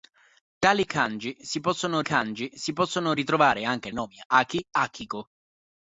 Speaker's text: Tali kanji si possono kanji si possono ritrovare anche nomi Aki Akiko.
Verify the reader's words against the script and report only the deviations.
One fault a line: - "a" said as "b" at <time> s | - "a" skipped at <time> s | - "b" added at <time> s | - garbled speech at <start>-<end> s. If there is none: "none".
none